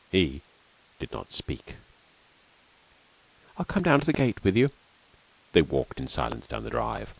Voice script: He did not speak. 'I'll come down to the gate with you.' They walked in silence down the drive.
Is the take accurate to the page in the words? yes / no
yes